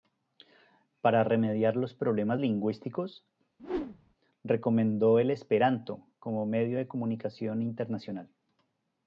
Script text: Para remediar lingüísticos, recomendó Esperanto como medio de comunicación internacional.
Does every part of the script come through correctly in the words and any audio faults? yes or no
no